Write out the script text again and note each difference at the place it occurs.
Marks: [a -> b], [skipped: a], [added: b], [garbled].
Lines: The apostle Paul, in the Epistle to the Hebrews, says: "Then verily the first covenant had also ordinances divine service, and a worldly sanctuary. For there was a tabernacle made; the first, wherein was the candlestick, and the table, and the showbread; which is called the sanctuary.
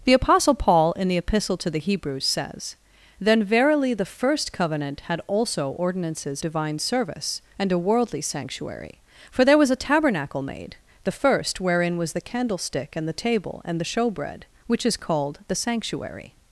The apostle Paul, in the Epistle to the Hebrews, says: "Then verily the first covenant had also ordinances divine service, and a worldly sanctuary. For there was a tabernacle made; the first, wherein was the candlestick, and the table, and the showbread; which is called the sanctuary.